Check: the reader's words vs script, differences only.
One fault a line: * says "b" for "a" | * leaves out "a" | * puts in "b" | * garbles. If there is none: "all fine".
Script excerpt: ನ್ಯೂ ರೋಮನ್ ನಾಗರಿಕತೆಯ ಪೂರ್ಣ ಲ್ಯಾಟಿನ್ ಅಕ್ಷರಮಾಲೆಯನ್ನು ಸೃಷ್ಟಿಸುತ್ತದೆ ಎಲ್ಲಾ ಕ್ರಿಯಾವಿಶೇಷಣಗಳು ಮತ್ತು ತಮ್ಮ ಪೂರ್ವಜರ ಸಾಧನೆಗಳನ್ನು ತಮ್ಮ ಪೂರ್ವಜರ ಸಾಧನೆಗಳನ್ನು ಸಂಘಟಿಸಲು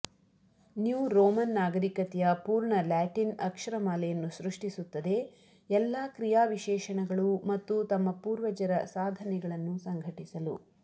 * leaves out "ತಮ್ಮ ಪೂರ್ವಜರ ಸಾಧನೆಗಳನ್ನು"